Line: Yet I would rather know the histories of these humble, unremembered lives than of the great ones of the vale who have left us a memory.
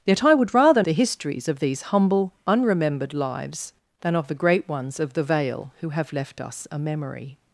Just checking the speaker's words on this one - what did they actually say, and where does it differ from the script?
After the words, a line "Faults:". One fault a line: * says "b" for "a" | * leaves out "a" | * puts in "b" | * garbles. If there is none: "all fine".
Yet I would rather the histories of these humble, unremembered lives than of the great ones of the vale who have left us a memory.
Faults:
* leaves out "know"